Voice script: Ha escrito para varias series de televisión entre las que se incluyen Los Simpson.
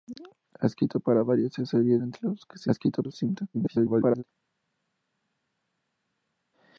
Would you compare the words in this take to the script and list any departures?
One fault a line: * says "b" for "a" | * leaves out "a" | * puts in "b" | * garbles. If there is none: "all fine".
* leaves out "de televisión"
* says "escrito" for "incluyen"
* garbles